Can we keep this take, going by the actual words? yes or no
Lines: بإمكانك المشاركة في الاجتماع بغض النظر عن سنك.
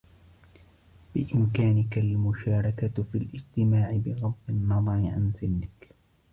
yes